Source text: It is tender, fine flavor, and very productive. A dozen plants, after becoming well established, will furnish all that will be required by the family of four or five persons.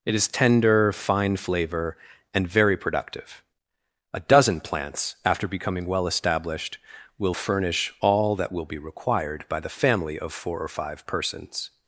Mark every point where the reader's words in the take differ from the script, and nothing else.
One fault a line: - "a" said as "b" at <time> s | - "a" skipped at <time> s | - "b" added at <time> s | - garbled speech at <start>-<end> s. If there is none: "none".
none